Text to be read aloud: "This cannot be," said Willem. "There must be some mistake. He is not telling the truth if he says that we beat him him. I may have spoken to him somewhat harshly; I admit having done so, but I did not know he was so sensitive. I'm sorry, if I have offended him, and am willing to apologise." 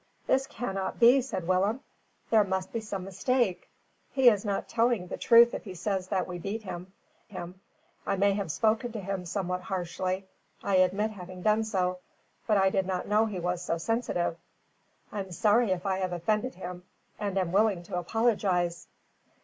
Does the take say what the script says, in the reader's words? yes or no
yes